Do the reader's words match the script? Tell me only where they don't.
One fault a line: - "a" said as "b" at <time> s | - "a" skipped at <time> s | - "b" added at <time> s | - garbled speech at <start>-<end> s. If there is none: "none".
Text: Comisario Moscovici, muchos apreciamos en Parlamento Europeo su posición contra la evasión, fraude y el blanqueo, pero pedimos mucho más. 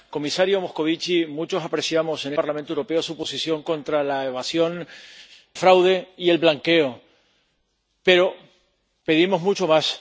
none